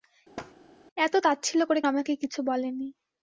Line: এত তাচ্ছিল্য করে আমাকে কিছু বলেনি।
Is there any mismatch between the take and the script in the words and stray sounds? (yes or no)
yes